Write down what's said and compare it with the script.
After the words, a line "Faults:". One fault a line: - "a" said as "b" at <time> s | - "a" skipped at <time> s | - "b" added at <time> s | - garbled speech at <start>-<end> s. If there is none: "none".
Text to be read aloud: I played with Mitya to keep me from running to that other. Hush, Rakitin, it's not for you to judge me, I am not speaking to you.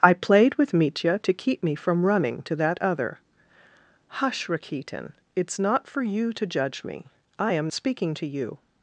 I played with Mitya to keep me from running to that other. Hush, Rakitin, it's not for you to judge me, I am speaking to you.
Faults:
- "not" skipped at 7.7 s